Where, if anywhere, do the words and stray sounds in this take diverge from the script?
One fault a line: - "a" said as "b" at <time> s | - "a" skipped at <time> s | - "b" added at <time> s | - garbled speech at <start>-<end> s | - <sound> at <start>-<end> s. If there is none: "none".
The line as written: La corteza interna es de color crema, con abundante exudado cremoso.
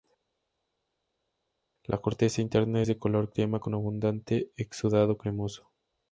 none